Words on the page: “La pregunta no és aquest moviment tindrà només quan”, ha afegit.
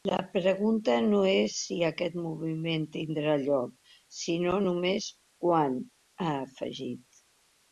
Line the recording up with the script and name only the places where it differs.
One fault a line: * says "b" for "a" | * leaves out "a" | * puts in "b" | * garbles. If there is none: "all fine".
* puts in "si"
* puts in "lloc sinó"